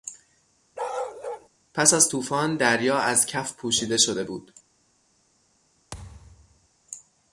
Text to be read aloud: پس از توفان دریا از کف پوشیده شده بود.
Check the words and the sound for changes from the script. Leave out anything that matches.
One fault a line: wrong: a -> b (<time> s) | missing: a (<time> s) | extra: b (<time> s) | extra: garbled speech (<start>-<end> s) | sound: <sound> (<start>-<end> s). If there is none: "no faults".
sound: bark (0.8-1.5 s)
sound: thud (5.9-6.7 s)